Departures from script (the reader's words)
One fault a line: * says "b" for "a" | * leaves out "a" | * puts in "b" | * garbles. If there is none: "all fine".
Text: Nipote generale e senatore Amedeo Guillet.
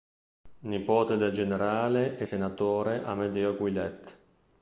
* puts in "del"